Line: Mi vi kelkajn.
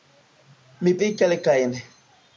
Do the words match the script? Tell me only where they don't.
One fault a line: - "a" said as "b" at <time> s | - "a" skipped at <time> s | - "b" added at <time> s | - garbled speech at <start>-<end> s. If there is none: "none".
none